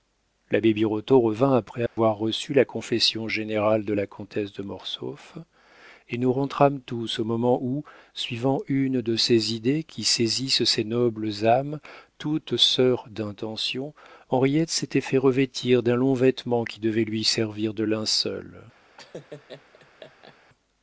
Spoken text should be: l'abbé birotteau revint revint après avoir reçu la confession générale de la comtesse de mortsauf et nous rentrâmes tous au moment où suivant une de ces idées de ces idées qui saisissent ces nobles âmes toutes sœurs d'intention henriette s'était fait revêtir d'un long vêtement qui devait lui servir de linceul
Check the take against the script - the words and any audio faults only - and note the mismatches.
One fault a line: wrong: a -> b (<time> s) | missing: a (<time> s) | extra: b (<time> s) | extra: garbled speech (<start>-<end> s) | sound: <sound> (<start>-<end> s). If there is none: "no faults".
missing: revint (1.5 s)
sound: dropout (1.9-2.0 s)
missing: de ces idées (9.8 s)
sound: laugh (19.0-20.4 s)